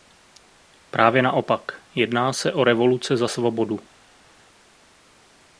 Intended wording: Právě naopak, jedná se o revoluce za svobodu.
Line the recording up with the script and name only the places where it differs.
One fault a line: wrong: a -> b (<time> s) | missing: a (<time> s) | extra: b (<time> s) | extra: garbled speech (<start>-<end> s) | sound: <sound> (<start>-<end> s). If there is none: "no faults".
no faults